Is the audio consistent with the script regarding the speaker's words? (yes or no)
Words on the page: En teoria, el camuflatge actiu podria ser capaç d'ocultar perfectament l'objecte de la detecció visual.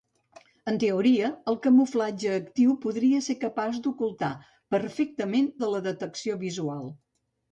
no